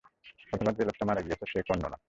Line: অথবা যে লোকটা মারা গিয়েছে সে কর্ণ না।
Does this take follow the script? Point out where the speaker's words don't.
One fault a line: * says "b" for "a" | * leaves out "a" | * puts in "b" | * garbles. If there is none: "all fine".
all fine